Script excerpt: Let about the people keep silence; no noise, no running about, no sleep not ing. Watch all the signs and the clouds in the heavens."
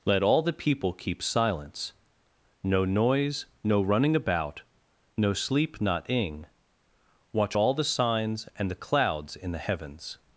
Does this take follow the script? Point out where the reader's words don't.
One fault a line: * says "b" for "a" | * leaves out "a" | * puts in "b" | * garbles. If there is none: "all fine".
* says "all" for "about"